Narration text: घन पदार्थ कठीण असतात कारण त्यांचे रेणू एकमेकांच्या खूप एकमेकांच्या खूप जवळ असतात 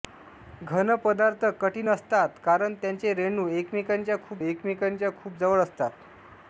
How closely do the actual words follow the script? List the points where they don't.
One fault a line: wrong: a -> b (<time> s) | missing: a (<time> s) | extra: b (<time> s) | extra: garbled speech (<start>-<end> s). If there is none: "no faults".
no faults